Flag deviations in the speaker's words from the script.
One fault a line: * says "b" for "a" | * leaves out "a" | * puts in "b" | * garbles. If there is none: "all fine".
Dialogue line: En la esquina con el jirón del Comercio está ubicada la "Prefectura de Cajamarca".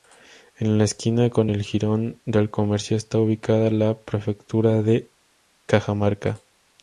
all fine